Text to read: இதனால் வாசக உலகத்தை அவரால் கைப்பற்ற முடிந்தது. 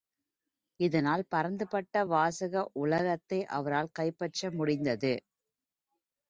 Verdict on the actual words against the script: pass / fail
fail